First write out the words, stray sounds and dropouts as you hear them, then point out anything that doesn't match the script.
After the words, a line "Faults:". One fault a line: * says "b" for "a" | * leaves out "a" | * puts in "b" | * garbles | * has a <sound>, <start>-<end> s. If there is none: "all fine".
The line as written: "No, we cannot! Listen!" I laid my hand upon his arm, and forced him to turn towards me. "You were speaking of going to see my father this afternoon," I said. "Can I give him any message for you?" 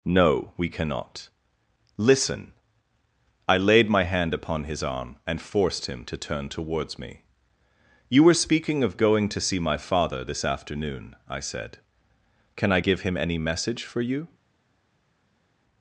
"No, we cannot! Listen!" I laid my hand upon his arm, and forced him to turn towards me. "You were speaking of going to see my father this afternoon," I said. "Can I give him any message for you?"
Faults:
all fine